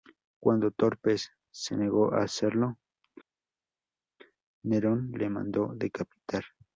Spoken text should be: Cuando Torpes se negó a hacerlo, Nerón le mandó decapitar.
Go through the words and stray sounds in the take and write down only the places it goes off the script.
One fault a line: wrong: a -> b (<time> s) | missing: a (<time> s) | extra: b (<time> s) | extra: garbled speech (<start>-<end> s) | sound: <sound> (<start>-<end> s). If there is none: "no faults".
no faults